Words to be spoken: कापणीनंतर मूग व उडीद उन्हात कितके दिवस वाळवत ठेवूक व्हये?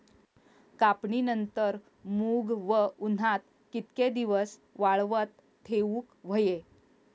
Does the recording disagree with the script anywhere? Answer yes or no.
yes